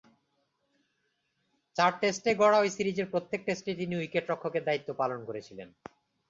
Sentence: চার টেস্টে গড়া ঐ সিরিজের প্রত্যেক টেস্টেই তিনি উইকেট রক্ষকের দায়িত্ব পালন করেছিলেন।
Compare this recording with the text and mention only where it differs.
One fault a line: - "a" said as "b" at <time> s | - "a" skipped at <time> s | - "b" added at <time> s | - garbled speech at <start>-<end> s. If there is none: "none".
none